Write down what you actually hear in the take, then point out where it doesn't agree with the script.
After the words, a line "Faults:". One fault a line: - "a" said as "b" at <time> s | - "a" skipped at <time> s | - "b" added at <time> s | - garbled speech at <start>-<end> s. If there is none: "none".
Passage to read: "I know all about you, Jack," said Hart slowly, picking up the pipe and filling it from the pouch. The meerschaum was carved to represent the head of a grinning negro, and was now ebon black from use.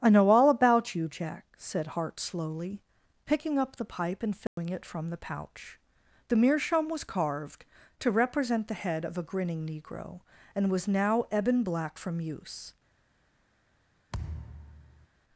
"I know all about you, Jack," said Hart slowly, picking up the pipe and filling it from the pouch. The meerschaum was carved to represent the head of a grinning negro, and was now ebon black from use.
Faults:
none